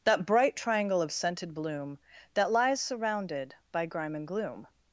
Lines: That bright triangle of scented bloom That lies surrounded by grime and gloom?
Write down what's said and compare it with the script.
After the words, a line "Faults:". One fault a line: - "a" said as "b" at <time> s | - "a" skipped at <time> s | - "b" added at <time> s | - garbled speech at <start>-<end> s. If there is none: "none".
That bright triangle of scented bloom That lies surrounded by grime and gloom?
Faults:
none